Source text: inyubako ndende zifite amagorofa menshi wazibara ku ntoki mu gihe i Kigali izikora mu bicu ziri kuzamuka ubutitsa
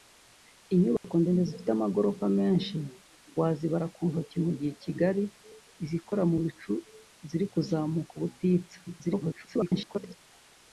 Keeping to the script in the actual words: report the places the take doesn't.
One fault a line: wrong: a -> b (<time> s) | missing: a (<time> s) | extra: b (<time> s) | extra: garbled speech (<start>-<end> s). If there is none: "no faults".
extra: garbled speech (8.9-10.2 s)